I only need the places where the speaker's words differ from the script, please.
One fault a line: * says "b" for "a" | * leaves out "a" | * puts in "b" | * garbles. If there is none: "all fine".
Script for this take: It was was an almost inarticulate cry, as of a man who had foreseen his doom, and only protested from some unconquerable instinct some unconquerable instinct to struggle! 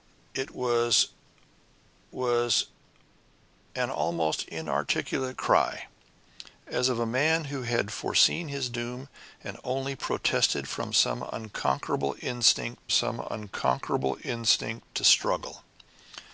all fine